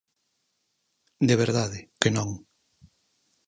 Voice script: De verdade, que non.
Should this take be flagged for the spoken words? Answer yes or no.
no